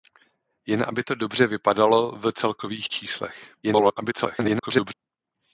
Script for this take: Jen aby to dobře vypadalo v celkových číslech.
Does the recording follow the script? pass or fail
fail